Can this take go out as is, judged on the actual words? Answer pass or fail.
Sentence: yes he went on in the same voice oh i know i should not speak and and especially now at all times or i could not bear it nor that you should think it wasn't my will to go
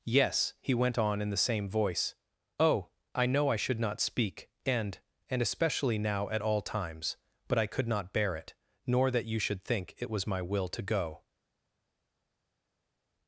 fail